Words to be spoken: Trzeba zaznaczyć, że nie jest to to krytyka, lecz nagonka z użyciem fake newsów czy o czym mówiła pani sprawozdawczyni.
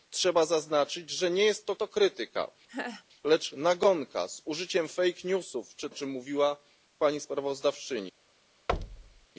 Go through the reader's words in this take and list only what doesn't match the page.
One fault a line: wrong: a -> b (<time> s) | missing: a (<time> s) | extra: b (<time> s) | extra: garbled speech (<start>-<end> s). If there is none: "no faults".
no faults